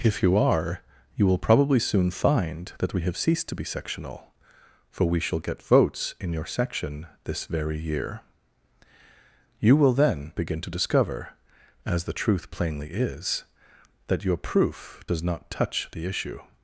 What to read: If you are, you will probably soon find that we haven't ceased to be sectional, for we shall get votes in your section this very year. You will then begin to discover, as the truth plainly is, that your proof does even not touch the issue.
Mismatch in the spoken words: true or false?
true